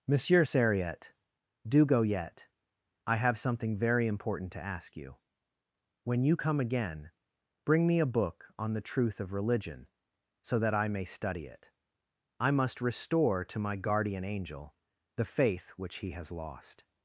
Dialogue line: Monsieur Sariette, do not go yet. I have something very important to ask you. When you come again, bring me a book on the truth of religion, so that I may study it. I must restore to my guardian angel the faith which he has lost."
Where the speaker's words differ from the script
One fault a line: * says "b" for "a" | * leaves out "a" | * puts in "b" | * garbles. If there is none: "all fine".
* leaves out "not"